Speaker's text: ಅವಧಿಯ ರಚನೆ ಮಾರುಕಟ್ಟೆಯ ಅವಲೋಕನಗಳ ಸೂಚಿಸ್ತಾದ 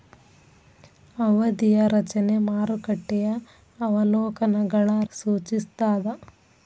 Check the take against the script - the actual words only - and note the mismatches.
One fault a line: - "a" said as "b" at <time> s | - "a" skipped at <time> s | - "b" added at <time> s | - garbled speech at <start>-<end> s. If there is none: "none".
none